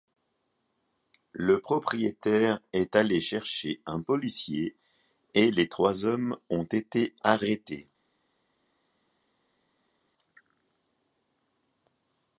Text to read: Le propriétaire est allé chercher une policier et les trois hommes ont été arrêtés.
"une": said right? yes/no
no